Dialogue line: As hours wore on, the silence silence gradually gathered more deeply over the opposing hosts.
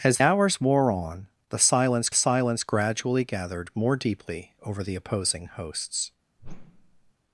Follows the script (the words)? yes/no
yes